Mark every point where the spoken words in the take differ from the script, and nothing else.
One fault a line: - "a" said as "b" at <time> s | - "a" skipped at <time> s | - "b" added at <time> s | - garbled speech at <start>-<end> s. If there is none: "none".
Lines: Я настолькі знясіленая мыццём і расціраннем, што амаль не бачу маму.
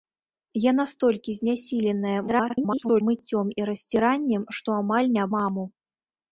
- garbled speech at 2.3-3.0 s
- "бачу" skipped at 5.2 s